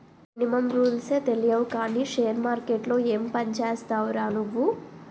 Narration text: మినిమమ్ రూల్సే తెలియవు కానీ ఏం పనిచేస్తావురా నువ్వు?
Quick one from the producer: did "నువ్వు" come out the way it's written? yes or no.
yes